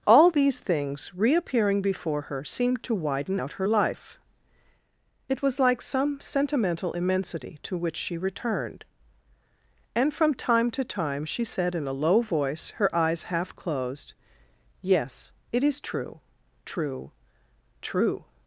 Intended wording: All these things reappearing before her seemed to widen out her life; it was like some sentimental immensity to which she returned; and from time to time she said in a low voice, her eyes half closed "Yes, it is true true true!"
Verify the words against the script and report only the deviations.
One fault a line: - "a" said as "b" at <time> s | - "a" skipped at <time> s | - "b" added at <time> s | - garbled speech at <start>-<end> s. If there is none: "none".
none